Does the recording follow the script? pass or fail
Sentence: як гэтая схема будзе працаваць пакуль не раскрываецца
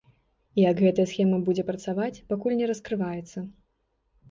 pass